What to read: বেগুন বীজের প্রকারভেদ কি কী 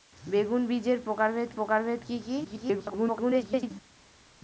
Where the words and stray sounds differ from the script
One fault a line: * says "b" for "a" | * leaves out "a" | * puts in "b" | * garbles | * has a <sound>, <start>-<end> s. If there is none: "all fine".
* puts in "প্রকারভেদ"
* garbles